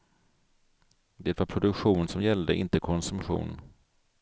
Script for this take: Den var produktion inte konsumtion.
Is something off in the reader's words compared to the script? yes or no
yes